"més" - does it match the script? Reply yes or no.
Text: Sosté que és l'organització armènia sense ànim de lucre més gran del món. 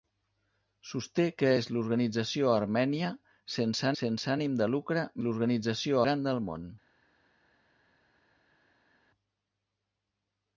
no